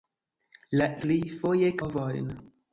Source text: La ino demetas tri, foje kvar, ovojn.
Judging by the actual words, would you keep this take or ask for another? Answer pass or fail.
fail